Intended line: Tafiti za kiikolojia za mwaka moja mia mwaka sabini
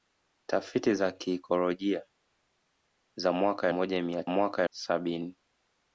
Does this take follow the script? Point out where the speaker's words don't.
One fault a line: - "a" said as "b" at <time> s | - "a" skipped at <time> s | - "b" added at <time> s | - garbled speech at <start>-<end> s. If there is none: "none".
none